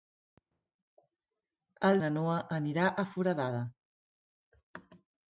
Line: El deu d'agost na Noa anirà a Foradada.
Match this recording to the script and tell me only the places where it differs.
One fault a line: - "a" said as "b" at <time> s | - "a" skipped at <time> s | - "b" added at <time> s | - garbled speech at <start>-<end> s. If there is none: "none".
- "deu d'agost" skipped at 2.0 s